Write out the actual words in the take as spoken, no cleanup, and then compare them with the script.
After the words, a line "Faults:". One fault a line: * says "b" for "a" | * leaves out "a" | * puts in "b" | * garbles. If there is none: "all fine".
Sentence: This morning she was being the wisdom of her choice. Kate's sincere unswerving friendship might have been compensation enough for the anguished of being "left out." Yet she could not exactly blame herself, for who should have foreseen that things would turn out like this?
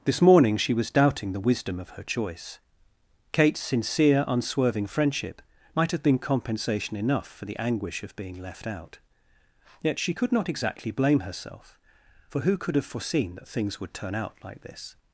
This morning she was doubting the wisdom of her choice. Kate's sincere unswerving friendship might have been compensation enough for the anguish of being "left out." Yet she could not exactly blame herself, for who could have foreseen that things would turn out like this?
Faults:
* says "doubting" for "being"
* says "anguish" for "anguished"
* says "could" for "should"